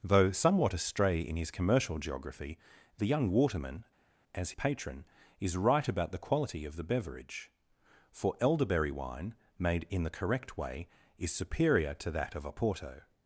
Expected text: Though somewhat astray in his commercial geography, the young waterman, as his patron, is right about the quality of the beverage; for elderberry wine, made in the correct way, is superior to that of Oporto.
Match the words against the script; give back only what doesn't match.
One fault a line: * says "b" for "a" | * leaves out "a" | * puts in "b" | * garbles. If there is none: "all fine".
* leaves out "his"